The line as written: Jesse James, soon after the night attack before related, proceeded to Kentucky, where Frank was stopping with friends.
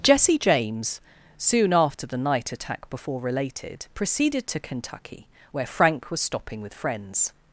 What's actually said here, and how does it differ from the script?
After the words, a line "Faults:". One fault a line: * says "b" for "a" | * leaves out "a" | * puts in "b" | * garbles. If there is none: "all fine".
Jesse James, soon after the night attack before related, proceeded to Kentucky, where Frank was stopping with friends.
Faults:
all fine